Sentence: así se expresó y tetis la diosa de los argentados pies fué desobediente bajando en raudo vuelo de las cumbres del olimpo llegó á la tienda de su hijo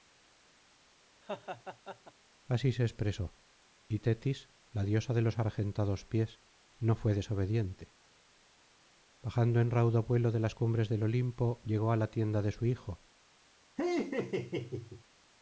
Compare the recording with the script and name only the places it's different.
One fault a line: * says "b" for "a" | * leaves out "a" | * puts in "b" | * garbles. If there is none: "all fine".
* puts in "no"